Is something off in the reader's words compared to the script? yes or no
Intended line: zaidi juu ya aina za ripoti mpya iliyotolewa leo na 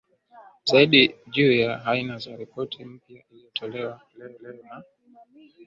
yes